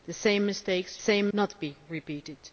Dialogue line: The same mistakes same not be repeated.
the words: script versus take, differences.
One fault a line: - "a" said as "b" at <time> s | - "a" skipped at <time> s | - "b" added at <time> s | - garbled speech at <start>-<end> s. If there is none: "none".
none